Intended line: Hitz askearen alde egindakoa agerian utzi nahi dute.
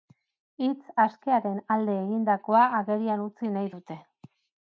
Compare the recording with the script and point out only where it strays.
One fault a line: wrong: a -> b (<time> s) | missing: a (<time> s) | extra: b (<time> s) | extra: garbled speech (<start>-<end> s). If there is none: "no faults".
no faults